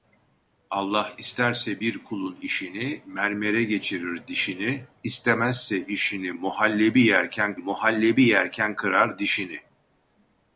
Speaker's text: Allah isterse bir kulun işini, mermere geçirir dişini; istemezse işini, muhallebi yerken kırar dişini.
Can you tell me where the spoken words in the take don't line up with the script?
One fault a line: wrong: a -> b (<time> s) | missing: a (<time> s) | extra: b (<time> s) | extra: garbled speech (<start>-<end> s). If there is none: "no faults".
extra: muhallebi yerken (7.6 s)